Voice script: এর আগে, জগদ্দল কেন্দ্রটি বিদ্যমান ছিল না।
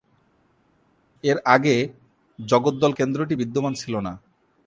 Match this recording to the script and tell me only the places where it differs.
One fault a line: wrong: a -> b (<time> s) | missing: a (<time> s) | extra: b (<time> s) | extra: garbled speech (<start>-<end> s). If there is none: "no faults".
no faults